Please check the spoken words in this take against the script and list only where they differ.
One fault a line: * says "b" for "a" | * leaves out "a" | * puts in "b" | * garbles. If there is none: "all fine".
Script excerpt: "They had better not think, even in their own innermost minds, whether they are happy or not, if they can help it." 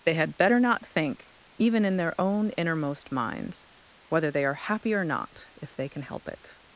all fine